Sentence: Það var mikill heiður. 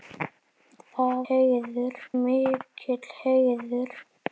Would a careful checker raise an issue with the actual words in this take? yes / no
yes